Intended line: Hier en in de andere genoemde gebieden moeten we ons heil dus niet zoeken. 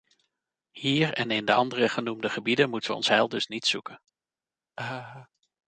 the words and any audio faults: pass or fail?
fail